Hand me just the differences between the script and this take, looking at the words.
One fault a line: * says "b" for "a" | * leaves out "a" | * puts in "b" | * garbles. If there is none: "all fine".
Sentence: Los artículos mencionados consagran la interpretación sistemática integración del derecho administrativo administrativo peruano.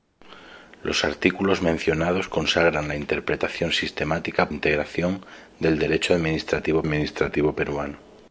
all fine